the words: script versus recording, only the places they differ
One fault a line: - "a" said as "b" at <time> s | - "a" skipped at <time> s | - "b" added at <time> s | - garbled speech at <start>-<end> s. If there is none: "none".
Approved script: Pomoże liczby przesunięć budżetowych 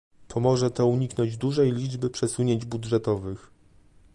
- "to uniknąć dużej" added at 0.7 s